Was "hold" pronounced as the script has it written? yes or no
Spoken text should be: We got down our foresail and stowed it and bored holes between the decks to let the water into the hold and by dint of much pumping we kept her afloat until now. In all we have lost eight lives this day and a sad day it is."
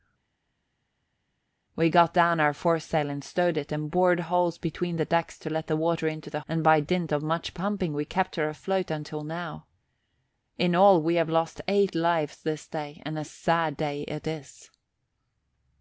no